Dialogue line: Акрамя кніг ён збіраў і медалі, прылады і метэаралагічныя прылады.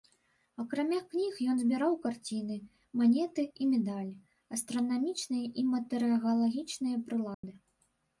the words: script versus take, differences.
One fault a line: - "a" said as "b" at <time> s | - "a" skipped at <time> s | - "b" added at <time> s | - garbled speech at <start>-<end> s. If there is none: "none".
- "карціны манеты" added at 2.0 s
- "прылады" said as "астранамічныя" at 4.6 s